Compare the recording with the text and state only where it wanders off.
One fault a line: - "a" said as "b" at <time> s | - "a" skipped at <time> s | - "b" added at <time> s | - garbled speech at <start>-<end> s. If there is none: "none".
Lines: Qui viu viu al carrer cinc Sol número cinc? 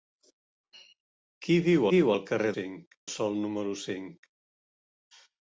none